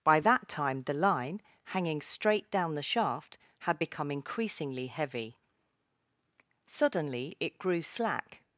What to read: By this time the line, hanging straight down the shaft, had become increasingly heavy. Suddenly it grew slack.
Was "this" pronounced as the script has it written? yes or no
no